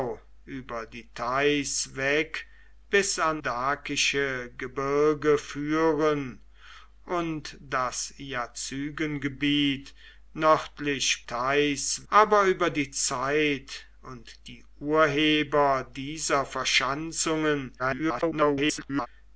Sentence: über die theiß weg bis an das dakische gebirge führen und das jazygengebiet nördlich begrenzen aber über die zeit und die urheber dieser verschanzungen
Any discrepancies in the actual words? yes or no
yes